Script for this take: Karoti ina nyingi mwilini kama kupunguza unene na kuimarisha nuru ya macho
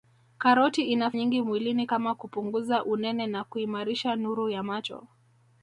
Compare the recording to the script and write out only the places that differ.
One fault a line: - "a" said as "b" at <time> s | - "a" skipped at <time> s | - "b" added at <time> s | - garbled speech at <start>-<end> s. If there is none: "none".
none